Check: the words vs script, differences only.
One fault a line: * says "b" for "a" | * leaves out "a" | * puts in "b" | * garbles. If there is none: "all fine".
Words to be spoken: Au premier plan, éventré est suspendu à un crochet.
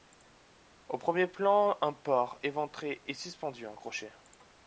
* puts in "un porc"